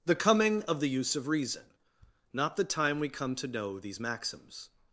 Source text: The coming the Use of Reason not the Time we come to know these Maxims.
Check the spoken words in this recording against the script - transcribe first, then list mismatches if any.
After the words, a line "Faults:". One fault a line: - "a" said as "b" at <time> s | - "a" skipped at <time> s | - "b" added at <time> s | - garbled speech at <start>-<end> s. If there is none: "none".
The coming of the Use of Reason not the Time we come to know these Maxims.
Faults:
- "of" added at 0.6 s